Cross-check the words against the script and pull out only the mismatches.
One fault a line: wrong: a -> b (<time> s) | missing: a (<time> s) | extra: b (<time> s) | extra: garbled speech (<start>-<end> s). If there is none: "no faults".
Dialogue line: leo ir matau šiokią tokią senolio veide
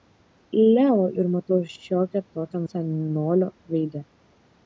no faults